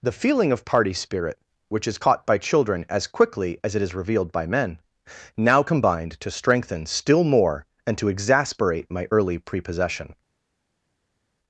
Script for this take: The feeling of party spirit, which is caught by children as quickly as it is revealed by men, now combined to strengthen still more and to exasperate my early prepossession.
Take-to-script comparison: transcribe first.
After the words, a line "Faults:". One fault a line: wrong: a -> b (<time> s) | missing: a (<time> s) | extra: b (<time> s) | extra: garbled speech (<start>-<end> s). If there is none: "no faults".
The feeling of party spirit, which is caught by children as quickly as it is revealed by men, now combined to strengthen still more and to exasperate my early prepossession.
Faults:
no faults